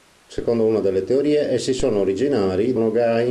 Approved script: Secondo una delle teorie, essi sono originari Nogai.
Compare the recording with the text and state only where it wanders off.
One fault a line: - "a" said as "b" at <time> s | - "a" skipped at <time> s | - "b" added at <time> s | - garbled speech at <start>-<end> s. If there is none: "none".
none